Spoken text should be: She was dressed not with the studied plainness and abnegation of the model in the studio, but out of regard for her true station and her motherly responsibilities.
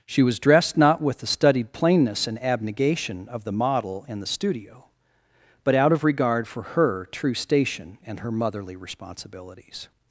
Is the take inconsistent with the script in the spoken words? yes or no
no